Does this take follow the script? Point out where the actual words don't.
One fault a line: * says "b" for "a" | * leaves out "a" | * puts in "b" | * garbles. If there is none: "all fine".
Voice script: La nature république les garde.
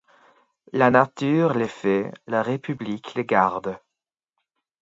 * puts in "les fait la"